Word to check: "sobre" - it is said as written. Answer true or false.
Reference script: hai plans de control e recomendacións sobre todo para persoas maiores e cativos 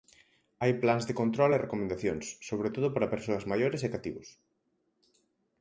true